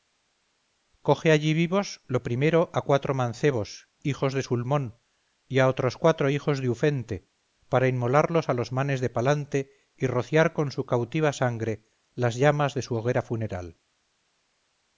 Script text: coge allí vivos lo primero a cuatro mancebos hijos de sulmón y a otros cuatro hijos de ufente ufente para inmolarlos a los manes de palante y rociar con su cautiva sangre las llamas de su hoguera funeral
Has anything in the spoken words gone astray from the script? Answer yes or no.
yes